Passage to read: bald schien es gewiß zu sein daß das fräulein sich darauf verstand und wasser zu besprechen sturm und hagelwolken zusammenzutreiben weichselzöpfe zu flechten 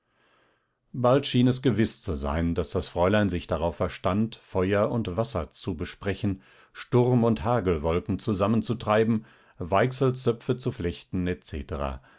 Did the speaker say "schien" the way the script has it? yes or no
yes